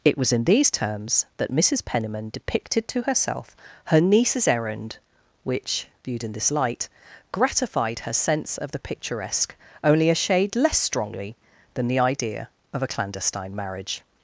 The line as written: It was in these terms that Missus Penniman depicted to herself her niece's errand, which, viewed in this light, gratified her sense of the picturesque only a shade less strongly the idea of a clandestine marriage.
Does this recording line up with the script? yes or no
no